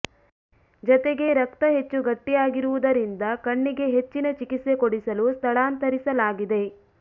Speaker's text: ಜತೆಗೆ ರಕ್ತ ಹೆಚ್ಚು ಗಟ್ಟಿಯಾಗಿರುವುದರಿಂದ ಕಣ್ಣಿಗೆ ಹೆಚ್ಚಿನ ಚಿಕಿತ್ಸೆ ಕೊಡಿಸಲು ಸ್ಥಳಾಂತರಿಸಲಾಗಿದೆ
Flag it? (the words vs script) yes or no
no